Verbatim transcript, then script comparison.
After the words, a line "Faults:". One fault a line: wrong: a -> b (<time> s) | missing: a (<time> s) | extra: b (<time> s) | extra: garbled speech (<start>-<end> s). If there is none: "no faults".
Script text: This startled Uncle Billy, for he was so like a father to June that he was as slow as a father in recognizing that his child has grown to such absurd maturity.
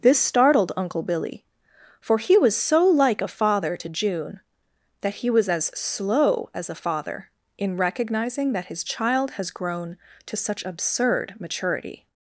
This startled Uncle Billy, for he was so like a father to June that he was as slow as a father in recognizing that his child has grown to such absurd maturity.
Faults:
no faults